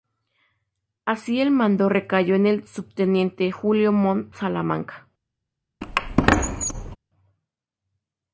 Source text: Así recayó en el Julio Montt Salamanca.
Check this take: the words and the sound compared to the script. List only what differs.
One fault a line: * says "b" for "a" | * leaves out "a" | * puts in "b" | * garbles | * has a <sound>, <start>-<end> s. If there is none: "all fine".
* puts in "el mando"
* puts in "subteniente"
* has a squeak, 5.8-7.0 s